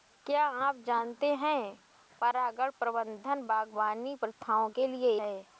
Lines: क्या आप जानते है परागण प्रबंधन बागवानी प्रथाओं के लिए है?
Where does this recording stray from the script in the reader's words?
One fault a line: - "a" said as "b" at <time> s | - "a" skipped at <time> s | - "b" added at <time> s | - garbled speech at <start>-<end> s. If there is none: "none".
none